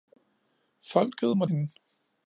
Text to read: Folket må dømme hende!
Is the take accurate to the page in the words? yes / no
no